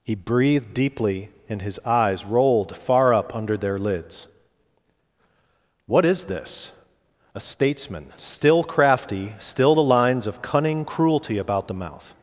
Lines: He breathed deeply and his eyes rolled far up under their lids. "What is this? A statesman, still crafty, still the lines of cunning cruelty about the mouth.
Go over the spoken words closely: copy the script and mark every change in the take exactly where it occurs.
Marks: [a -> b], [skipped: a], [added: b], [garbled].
He breathed deeply and his eyes rolled far up under their lids. "What is this? A statesman, still crafty, still the lines of cunning cruelty about the mouth.